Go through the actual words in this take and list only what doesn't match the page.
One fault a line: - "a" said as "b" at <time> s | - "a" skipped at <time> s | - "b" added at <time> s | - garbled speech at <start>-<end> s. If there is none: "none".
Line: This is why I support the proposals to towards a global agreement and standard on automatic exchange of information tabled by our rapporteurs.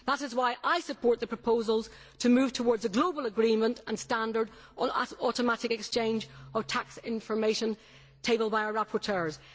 - "This" said as "That" at 0.1 s
- "move" added at 2.3 s
- "tax" added at 6.7 s